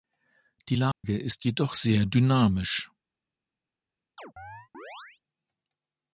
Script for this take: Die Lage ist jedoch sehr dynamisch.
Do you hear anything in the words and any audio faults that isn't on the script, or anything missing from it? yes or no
yes